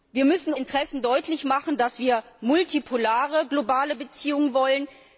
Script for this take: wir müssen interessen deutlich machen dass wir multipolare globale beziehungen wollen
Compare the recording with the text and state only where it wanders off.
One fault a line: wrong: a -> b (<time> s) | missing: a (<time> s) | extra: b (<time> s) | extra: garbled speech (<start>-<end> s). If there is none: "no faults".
no faults